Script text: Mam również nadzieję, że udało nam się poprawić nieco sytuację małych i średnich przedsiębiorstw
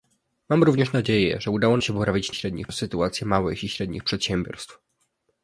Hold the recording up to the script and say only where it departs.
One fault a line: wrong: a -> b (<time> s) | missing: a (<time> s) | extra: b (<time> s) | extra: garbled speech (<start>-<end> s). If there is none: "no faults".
missing: nam (1.8 s)
wrong: nieco -> średnich (2.3 s)